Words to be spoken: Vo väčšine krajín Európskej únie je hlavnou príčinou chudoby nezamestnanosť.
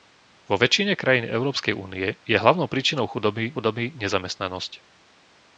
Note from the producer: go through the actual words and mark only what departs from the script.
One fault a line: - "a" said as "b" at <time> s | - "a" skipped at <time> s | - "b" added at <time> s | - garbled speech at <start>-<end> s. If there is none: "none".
- "chudoby" added at 3.5 s